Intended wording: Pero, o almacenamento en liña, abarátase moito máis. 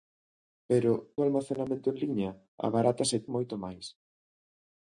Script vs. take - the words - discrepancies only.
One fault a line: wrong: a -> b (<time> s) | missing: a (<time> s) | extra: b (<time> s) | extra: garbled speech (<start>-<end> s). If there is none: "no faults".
no faults